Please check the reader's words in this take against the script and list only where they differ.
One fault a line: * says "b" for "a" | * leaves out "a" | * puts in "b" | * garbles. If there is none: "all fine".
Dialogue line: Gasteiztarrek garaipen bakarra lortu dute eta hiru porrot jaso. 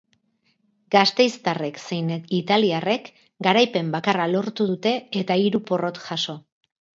* puts in "zein italiarrek"